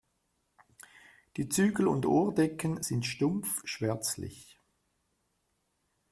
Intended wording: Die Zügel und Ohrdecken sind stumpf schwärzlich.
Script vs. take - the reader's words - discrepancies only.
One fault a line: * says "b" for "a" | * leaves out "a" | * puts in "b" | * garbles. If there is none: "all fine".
all fine